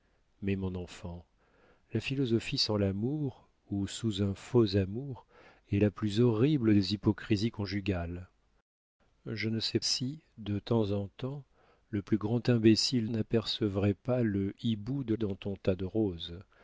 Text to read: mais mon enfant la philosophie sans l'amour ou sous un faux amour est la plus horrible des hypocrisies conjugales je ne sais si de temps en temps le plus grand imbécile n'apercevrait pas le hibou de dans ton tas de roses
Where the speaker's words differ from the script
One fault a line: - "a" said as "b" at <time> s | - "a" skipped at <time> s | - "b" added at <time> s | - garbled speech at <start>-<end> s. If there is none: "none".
none